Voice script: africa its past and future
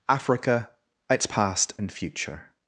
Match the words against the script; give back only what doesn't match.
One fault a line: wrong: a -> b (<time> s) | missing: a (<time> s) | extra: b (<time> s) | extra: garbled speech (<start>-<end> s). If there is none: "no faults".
no faults